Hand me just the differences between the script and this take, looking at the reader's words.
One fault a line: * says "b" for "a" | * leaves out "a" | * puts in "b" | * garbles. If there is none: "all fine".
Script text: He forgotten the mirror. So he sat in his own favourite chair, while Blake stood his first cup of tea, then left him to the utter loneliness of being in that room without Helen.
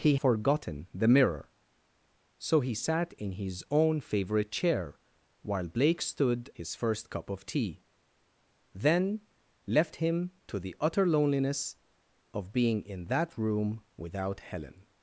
all fine